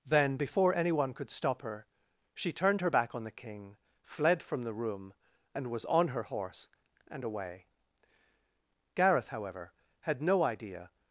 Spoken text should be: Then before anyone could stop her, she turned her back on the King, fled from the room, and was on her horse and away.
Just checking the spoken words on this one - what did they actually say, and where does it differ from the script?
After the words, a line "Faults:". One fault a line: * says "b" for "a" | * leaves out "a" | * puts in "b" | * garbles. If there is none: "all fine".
Then before anyone could stop her, she turned her back on the King, fled from the room, and was on her horse and away. Gareth, however, had no idea
Faults:
* puts in "Gareth however had no idea"